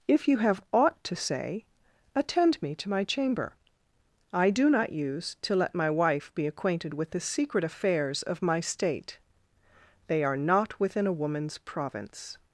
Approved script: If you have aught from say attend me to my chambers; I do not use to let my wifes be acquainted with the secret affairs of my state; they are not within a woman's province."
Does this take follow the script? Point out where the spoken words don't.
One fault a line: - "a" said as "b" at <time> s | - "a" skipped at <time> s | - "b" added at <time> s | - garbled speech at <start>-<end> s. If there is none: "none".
- "from" said as "to" at 1.0 s
- "chambers" said as "chamber" at 3.0 s
- "wifes" said as "wife" at 5.9 s